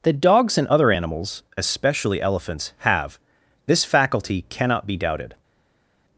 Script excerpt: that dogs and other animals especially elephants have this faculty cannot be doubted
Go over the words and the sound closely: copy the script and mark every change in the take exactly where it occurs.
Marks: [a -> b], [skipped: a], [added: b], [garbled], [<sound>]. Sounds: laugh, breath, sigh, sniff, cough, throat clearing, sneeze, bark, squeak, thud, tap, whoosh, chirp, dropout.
that dogs and other animals especially elephants have this faculty cannot be doubted